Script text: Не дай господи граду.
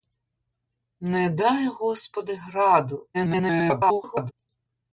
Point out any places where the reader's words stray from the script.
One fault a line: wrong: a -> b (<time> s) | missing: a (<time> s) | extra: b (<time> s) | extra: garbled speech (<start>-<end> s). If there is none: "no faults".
extra: garbled speech (3.1-4.3 s)